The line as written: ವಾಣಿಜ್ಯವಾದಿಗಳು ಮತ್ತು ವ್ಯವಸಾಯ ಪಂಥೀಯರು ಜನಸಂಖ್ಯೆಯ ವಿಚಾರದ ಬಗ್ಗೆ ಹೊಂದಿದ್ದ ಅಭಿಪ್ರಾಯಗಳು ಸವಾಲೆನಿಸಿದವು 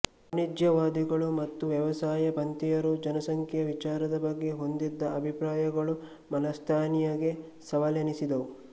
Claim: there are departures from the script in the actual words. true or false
true